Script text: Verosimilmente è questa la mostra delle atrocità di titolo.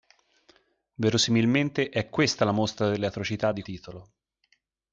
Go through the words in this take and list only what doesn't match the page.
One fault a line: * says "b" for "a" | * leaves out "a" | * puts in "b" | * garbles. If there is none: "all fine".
all fine